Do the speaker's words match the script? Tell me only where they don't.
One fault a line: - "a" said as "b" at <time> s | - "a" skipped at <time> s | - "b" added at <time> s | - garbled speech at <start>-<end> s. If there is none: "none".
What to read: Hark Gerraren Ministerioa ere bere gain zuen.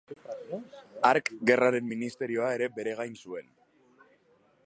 none